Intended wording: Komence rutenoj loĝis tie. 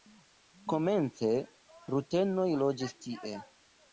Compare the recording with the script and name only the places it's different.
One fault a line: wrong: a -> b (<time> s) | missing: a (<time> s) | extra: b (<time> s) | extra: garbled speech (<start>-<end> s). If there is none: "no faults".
no faults